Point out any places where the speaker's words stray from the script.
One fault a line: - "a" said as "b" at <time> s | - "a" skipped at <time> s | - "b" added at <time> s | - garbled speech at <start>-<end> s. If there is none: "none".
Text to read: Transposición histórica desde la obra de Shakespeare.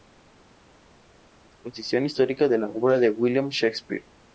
- "desde" said as "de" at 2.5 s
- "William" added at 3.1 s